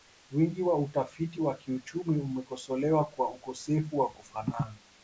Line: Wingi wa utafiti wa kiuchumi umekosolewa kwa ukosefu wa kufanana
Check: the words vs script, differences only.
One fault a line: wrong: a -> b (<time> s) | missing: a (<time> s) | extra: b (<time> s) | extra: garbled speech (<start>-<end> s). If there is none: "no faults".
no faults